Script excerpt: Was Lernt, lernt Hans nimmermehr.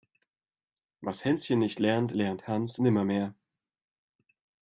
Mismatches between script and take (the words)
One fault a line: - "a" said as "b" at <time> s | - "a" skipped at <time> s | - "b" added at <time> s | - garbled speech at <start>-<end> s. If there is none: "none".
- "Hänschen nicht" added at 1.2 s